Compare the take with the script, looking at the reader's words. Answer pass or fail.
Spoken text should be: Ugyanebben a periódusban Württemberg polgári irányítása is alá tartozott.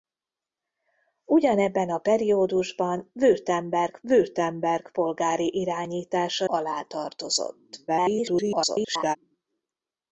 fail